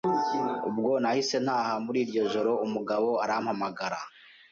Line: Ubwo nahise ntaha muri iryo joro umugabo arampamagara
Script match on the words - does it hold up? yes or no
yes